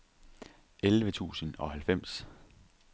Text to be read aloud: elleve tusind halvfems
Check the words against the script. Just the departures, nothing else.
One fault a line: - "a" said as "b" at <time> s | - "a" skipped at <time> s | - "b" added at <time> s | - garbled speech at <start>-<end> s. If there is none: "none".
- "og" added at 1.6 s